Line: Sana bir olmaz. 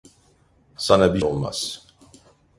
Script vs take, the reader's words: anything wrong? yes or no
no